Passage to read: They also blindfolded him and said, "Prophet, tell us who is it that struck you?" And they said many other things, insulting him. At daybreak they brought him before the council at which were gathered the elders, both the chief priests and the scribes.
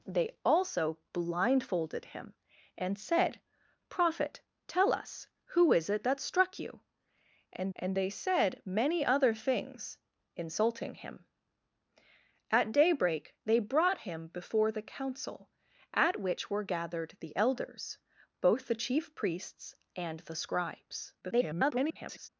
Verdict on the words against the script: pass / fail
fail